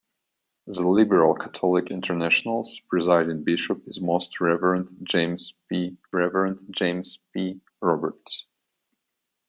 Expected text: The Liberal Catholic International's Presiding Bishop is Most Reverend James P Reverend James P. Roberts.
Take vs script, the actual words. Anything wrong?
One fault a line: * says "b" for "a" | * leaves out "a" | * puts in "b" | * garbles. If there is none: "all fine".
all fine